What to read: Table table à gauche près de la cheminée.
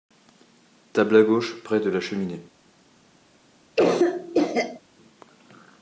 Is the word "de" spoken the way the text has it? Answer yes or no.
yes